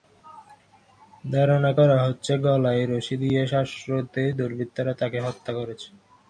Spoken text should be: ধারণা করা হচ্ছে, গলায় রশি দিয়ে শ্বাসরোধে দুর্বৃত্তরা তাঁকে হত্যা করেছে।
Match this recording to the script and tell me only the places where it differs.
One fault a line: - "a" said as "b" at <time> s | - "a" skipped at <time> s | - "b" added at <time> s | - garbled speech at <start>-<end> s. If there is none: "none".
none